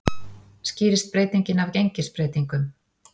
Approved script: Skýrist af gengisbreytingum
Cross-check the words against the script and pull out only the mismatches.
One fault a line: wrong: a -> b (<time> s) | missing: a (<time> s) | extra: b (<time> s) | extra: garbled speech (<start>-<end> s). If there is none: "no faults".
extra: breytingin (1.1 s)